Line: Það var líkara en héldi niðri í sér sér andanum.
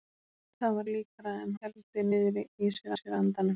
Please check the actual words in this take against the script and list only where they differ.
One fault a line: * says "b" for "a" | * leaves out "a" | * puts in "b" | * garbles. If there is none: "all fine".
all fine